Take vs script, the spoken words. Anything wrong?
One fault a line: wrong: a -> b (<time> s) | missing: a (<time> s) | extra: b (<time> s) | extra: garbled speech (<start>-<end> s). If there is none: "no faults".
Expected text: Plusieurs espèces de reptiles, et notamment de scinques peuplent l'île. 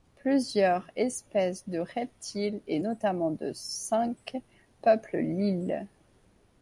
no faults